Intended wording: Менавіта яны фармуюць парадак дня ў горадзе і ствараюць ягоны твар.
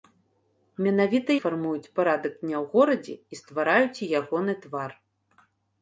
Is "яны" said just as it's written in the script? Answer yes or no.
no